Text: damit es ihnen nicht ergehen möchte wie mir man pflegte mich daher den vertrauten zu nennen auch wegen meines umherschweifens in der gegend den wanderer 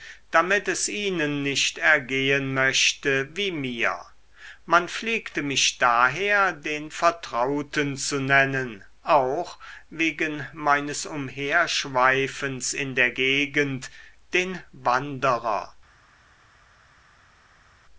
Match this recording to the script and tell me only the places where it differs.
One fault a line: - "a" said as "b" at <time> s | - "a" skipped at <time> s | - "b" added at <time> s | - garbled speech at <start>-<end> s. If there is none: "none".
none